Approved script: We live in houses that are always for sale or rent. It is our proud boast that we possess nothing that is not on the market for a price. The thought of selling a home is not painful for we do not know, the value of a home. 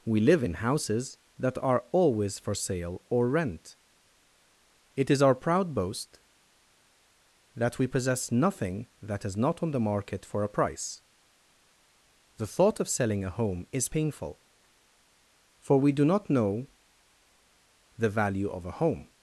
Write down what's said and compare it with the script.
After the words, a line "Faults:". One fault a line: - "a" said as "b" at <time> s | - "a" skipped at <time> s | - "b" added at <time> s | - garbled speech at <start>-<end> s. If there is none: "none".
We live in houses that are always for sale or rent. It is our proud boast that we possess nothing that is not on the market for a price. The thought of selling a home is painful for we do not know, the value of a home.
Faults:
- "not" skipped at 13.9 s